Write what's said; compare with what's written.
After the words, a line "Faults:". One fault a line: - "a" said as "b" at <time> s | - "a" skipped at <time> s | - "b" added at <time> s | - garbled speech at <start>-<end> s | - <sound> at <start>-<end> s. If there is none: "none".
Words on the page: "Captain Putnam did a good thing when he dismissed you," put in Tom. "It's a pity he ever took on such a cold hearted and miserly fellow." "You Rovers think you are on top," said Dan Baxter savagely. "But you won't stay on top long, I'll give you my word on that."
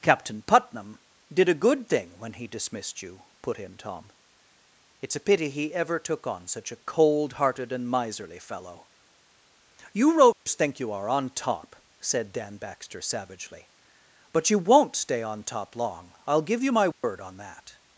"Captain Putnam did a good thing when he dismissed you," put in Tom. "It's a pity he ever took on such a cold hearted and miserly fellow." "You Rovers think you are on top," said Dan Baxter savagely. "But you won't stay on top long, I'll give you my word on that."
Faults:
- dropout at 10.3-10.5 s
- dropout at 16.9-17.0 s